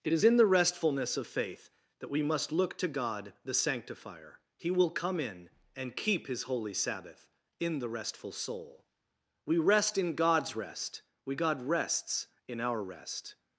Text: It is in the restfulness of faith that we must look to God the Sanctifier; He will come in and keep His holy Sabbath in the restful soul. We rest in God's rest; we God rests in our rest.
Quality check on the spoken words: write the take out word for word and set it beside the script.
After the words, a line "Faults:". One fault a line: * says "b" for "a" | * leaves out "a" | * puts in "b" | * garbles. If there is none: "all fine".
It is in the restfulness of faith that we must look to God the Sanctifier; He will come in and keep His holy Sabbath in the restful soul. We rest in God's rest; we God rests in our rest.
Faults:
all fine